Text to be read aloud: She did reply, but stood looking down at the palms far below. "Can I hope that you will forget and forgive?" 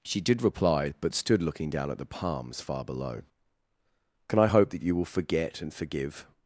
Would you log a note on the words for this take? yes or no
no